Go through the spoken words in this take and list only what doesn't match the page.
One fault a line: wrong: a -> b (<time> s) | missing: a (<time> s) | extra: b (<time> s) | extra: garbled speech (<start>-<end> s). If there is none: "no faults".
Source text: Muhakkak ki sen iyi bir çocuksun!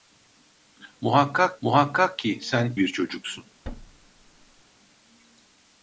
extra: muhakkak (1.6 s)
missing: iyi (2.7 s)